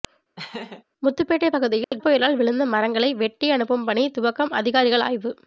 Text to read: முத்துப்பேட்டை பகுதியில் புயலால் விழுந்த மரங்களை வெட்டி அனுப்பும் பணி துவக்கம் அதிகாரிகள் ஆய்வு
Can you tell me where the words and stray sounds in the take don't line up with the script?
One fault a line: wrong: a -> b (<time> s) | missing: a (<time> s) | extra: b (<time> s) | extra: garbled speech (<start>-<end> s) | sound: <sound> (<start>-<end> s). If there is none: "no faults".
sound: laugh (0.4-0.8 s)
sound: dropout (1.8-1.9 s)